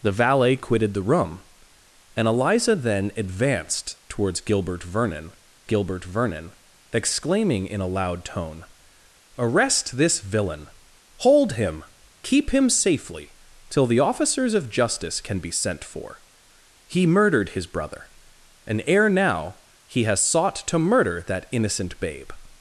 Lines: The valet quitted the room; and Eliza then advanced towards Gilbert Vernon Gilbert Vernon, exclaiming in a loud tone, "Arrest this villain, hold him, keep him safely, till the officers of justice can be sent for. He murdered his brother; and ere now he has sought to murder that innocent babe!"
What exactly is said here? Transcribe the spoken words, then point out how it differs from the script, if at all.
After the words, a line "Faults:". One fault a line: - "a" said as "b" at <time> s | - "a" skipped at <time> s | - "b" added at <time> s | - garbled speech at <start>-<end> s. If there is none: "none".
The valet quitted the room; and Eliza then advanced towards Gilbert Vernon Gilbert Vernon, exclaiming in a loud tone, "Arrest this villain, hold him, keep him safely, till the officers of justice can be sent for. He murdered his brother; and ere now he has sought to murder that innocent babe!"
Faults:
none